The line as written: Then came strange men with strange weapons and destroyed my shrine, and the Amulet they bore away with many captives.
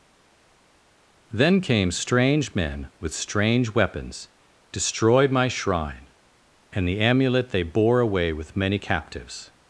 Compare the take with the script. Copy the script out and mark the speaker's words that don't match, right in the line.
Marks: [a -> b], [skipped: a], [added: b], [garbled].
Then came strange men with strange weapons [skipped: and] destroyed my shrine, and the Amulet they bore away with many captives.